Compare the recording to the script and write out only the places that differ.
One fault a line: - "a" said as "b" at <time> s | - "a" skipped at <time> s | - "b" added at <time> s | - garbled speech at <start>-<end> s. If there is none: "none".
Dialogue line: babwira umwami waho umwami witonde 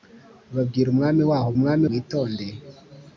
none